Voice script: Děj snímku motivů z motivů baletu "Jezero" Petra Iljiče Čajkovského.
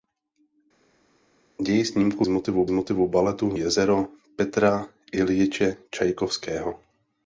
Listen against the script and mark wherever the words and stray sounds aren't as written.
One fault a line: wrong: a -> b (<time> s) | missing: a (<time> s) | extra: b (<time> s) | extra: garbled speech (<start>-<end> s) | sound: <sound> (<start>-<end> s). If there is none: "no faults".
no faults